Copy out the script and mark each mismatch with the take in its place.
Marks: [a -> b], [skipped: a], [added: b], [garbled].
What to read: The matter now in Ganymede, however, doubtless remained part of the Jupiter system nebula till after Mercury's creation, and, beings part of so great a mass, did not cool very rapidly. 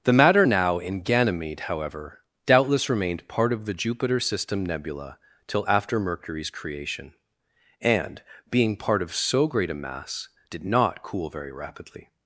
The matter now in Ganymede, however, doubtless remained part of the Jupiter system nebula till after Mercury's creation, and, [beings -> being] part of so great a mass, did not cool very rapidly.